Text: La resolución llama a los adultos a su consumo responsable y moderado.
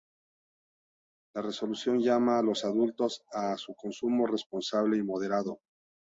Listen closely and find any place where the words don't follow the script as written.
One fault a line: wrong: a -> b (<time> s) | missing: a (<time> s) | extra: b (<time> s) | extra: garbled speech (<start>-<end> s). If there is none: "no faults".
no faults